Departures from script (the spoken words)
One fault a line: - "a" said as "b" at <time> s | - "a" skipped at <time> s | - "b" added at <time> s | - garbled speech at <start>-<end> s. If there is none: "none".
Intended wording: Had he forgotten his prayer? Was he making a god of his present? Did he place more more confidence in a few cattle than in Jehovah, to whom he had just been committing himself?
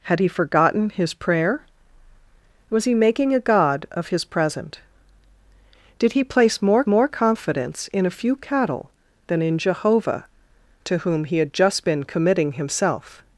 none